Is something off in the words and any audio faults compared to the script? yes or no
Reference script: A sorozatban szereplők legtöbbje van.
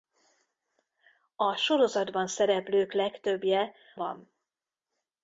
no